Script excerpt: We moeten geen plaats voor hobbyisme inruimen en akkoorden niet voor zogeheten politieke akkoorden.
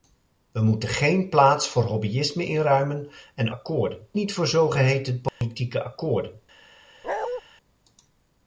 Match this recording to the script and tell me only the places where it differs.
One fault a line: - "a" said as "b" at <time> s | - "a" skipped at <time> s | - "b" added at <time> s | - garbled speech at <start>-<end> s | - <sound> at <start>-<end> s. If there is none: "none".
- dropout at 5.3-5.4 s
- bark at 7.0-7.4 s